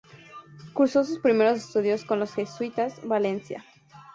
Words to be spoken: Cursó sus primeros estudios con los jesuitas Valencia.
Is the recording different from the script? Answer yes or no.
no